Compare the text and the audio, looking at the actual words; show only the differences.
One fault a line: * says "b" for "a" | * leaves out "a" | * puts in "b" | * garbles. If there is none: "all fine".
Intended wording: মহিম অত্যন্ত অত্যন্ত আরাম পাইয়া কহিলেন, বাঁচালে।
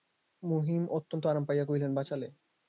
* leaves out "অত্যন্ত"